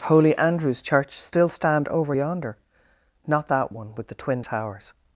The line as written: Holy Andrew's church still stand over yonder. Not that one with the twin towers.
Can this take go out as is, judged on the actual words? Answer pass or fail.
pass